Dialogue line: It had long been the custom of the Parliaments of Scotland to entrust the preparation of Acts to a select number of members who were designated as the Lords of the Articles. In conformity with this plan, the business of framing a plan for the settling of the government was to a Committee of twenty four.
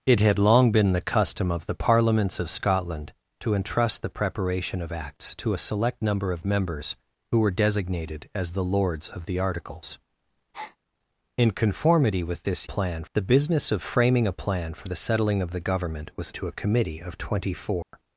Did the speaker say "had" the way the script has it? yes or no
yes